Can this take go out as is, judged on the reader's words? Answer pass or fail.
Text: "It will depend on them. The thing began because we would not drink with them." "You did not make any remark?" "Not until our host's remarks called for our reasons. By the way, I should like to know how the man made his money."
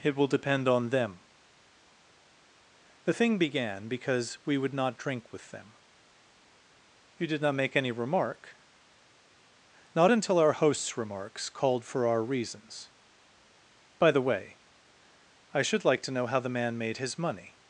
pass